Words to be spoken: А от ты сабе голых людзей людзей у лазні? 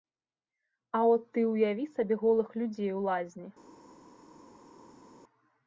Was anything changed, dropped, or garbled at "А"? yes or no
no